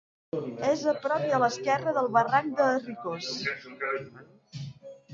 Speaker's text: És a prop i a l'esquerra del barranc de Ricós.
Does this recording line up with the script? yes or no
yes